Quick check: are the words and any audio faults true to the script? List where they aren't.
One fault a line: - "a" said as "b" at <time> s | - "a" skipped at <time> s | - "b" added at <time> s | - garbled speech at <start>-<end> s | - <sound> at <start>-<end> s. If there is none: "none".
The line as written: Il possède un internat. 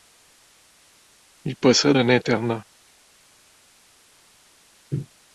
none